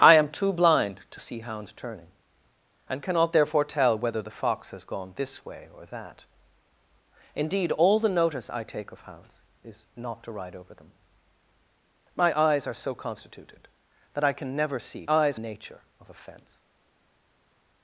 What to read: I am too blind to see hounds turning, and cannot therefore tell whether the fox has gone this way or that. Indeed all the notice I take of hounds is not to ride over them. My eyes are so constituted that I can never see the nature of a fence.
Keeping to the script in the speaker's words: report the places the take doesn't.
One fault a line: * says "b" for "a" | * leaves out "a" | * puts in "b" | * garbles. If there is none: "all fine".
* says "eyes" for "the"